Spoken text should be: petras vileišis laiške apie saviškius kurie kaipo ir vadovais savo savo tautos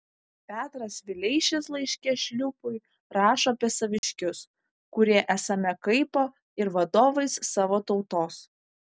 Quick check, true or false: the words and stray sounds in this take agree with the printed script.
false